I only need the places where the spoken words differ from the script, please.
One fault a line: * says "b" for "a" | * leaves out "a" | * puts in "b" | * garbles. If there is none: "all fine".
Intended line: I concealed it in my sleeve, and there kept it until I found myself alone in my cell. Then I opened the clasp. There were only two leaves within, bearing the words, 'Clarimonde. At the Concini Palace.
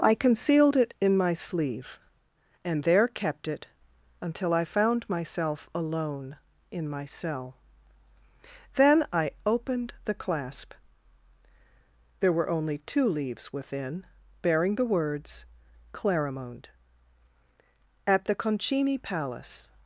all fine